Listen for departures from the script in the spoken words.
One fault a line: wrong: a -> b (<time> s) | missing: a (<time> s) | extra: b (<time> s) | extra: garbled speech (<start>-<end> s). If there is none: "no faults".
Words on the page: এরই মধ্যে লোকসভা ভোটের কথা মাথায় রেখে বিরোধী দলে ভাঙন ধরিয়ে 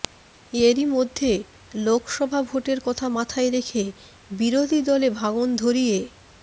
no faults